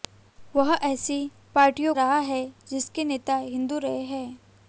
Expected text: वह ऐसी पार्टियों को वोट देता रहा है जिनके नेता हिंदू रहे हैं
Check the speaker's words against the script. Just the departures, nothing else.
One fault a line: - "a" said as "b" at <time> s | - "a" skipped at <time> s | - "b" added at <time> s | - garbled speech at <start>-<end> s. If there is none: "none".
- "को वोट देता" skipped at 1.9 s